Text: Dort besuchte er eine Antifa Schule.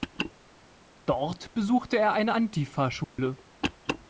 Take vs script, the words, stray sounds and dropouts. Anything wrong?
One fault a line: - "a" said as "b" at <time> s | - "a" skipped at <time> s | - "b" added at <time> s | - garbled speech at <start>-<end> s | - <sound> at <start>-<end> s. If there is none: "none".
- dropout at 3.0-3.2 s